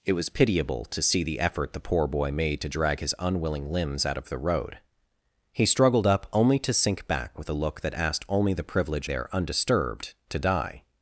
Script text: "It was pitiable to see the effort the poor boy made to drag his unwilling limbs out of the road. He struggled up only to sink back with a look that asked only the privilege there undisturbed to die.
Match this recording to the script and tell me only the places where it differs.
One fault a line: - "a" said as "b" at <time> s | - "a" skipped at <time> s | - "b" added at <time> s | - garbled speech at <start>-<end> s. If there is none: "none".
none